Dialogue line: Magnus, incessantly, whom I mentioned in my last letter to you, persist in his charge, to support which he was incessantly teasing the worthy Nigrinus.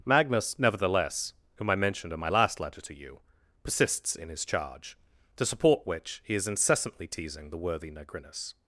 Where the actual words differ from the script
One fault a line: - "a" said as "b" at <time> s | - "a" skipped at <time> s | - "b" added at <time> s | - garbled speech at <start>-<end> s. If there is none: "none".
- "incessantly" said as "nevertheless" at 0.6 s
- "persist" said as "persists" at 3.6 s
- "was" said as "is" at 6.3 s